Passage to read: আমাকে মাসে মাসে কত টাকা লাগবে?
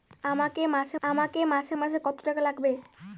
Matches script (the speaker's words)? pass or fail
fail